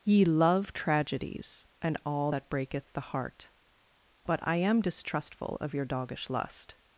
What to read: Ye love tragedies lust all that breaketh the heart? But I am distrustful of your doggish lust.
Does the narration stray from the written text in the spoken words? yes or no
yes